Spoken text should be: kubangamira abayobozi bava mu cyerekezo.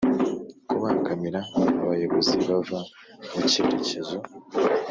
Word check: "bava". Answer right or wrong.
right